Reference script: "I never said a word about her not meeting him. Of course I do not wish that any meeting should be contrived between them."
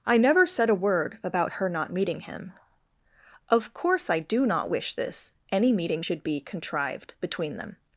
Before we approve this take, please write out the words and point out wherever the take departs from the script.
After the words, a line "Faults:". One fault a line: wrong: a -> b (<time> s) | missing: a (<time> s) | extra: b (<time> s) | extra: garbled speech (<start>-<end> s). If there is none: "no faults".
"I never said a word about her not meeting him. Of course I do not wish this any meeting should be contrived between them."
Faults:
wrong: that -> this (5.0 s)